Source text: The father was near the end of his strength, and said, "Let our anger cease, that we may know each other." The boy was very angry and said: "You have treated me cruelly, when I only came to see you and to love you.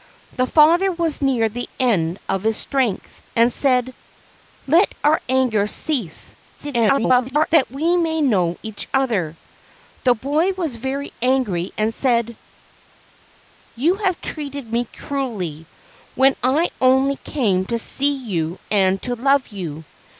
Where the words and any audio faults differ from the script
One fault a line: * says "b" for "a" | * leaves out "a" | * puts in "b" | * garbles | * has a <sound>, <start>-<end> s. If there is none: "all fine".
* garbles